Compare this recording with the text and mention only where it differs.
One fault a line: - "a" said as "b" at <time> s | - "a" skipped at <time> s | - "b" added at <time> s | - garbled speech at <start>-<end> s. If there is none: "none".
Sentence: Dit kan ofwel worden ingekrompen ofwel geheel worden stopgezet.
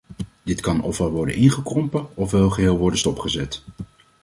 none